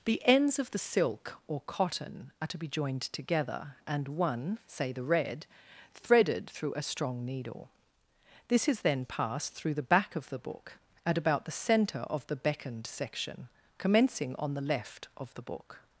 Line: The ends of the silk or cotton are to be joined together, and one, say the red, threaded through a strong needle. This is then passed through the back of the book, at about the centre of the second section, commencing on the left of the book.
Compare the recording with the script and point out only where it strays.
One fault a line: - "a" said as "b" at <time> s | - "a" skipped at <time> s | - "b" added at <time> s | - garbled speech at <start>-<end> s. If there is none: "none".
- "second" said as "beckoned" at 12.3 s